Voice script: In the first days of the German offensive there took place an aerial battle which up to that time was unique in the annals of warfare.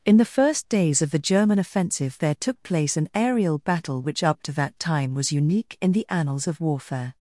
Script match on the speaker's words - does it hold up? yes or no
yes